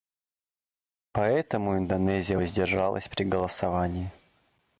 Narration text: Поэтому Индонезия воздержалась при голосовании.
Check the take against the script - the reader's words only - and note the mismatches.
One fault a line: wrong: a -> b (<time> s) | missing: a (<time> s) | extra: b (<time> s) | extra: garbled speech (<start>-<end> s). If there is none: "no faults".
no faults